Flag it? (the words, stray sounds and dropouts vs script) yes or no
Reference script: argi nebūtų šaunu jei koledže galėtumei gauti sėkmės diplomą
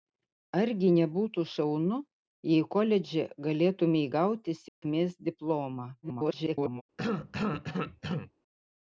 yes